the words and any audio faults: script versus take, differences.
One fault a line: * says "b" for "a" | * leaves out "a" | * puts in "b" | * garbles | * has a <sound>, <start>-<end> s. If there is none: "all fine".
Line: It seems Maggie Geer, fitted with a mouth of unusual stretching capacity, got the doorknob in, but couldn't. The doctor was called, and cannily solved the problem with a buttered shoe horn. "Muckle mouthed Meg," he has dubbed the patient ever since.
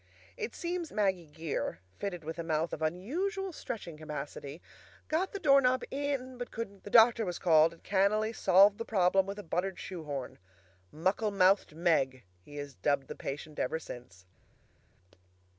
all fine